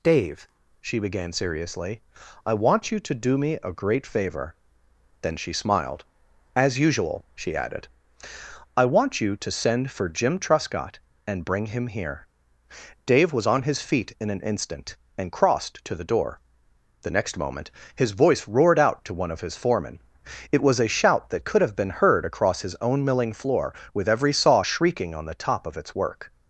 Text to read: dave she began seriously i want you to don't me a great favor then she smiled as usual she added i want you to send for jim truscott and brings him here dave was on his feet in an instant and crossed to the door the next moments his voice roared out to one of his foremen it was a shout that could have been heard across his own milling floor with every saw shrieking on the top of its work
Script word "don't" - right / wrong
wrong